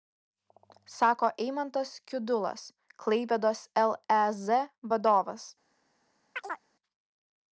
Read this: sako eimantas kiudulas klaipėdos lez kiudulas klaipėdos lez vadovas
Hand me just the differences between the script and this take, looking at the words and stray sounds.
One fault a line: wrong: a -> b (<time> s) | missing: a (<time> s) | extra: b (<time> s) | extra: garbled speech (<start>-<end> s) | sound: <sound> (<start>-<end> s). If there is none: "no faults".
missing: kiudulas klaipėdos lez (4.4 s)
sound: chirp (6.4-6.7 s)